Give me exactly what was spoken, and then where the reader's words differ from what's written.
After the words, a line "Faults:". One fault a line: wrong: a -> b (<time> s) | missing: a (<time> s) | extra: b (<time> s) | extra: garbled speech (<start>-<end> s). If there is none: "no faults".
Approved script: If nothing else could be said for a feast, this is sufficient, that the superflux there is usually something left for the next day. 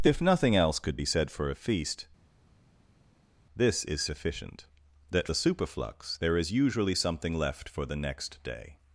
If nothing else could be said for a feast, this is sufficient, that the superflux there is usually something left for the next day.
Faults:
no faults